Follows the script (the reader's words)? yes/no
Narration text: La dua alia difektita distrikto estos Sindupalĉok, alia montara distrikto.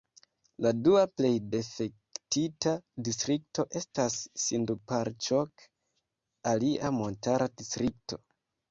no